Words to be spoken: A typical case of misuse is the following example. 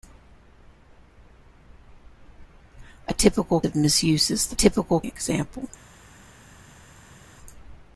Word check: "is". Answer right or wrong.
right